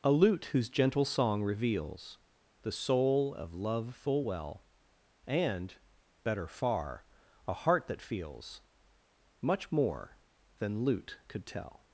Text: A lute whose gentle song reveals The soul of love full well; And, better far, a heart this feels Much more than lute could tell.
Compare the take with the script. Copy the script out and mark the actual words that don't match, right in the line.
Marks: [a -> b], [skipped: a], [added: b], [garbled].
A lute whose gentle song reveals The soul of love full well; And, better far, a heart [this -> that] feels Much more than lute could tell.